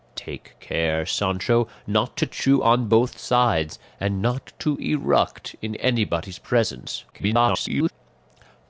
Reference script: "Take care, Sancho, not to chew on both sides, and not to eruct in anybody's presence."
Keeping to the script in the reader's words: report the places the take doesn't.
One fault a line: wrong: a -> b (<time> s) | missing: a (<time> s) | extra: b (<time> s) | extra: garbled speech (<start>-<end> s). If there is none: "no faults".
extra: garbled speech (7.1-7.9 s)